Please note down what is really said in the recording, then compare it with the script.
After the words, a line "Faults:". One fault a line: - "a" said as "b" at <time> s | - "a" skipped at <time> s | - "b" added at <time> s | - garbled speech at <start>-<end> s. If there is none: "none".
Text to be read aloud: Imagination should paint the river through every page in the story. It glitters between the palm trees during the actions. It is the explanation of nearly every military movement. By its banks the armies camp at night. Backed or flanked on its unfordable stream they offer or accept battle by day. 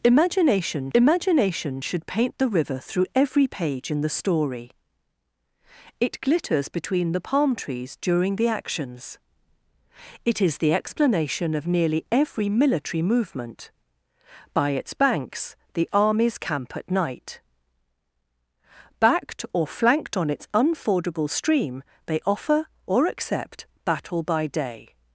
Imagination imagination should paint the river through every page in the story. It glitters between the palm trees during the actions. It is the explanation of nearly every military movement. By its banks the armies camp at night. Backed or flanked on its unfordable stream they offer or accept battle by day.
Faults:
- "imagination" added at 0.9 s